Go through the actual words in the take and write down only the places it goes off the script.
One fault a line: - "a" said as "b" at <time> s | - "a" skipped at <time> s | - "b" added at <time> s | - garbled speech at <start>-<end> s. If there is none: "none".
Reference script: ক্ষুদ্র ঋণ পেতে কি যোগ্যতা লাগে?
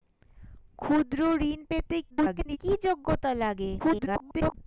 - garbled speech at 2.1-2.6 s
- garbled speech at 3.8-4.5 s